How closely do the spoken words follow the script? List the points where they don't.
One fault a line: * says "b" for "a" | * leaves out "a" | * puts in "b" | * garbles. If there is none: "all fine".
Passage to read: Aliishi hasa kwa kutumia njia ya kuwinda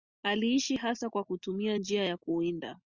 all fine